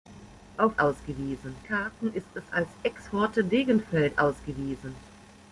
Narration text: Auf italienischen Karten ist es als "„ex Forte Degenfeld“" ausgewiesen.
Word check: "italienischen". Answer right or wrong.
wrong